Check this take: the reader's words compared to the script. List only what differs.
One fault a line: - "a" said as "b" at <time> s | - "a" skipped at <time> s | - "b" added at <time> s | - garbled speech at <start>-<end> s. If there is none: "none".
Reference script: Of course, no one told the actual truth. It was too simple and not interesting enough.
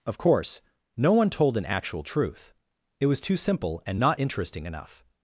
- "the" said as "an" at 1.6 s